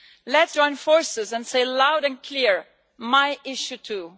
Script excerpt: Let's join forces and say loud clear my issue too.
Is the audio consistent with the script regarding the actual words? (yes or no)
no